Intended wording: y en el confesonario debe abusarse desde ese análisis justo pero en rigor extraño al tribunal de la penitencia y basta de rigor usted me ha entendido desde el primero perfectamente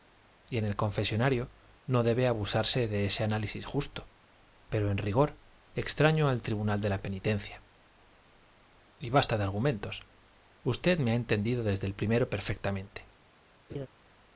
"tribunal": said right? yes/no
yes